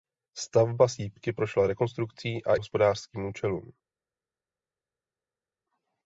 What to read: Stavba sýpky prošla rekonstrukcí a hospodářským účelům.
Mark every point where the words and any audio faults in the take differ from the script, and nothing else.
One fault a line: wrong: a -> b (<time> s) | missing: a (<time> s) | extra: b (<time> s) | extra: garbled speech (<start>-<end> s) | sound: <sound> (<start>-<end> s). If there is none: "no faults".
no faults